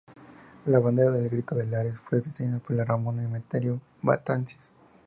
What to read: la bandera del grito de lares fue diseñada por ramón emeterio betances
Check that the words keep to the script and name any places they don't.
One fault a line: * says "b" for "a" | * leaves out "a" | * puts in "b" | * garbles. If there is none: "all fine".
all fine